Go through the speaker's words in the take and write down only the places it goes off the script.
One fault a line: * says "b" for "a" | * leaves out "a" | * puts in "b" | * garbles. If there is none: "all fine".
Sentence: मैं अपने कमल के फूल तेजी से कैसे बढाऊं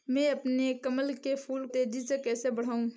all fine